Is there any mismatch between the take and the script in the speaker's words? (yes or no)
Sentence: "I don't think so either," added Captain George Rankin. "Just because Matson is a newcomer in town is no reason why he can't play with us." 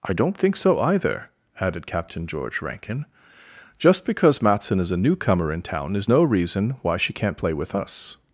yes